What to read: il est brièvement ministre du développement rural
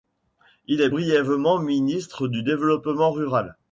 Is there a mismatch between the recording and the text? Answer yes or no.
no